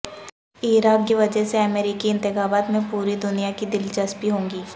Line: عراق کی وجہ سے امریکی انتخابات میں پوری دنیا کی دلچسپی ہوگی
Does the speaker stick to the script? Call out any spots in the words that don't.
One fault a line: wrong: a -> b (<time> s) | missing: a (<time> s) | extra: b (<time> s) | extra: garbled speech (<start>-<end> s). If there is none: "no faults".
no faults